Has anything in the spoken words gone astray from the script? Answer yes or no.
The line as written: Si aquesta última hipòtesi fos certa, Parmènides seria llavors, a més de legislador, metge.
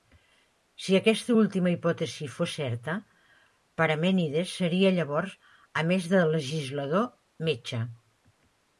no